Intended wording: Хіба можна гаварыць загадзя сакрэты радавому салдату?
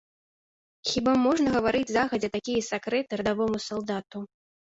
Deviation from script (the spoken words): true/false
true